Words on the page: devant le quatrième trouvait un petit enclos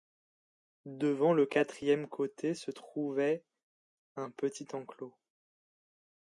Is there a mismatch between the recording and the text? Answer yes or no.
yes